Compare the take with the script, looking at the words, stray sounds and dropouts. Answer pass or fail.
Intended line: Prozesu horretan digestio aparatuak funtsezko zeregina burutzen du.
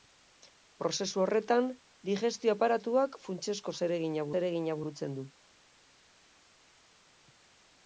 fail